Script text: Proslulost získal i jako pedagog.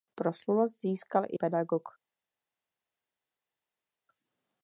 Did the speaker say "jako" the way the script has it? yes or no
no